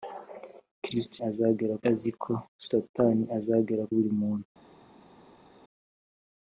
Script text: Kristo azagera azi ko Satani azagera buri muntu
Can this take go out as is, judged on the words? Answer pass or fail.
pass